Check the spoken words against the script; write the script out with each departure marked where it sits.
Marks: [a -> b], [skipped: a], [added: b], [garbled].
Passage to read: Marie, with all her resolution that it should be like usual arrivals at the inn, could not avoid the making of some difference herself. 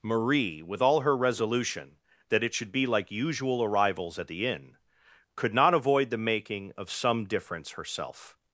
Marie, with all her resolution that it should be like usual arrivals at the inn, could not avoid the making of some difference herself.